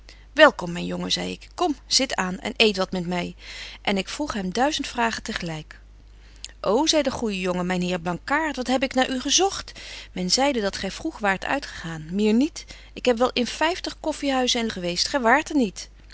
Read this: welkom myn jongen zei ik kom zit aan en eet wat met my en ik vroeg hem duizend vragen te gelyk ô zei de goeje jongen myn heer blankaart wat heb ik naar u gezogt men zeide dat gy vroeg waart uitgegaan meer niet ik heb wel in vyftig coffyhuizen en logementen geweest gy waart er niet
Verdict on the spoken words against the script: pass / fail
fail